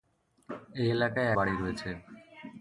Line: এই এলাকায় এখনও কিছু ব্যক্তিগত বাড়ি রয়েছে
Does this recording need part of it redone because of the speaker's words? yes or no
yes